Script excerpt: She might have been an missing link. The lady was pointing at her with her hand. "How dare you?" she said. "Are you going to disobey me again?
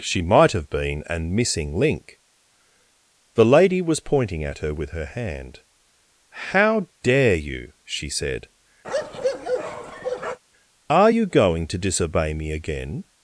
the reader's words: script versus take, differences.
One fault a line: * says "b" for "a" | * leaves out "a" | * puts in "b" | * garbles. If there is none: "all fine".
all fine